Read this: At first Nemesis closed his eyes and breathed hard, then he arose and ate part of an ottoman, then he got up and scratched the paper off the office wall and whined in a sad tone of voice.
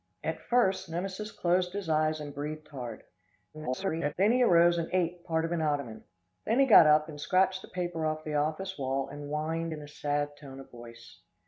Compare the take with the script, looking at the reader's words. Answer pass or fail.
fail